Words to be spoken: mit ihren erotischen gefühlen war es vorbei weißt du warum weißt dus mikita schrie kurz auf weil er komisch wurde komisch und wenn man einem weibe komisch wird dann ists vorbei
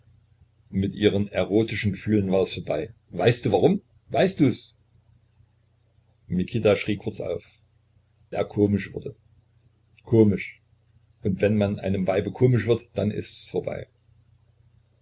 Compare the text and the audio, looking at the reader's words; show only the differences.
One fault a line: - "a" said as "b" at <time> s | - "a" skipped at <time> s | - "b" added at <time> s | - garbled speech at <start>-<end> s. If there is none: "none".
- "weil" skipped at 7.5 s